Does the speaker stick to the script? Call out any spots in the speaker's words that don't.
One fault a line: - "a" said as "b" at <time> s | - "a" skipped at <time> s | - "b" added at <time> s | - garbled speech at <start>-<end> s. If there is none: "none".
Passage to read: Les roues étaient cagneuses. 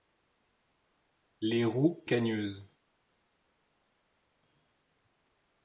- "étaient" skipped at 2.0 s